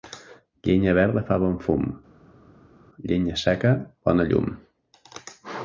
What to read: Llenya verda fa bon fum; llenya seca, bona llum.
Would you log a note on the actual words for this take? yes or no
no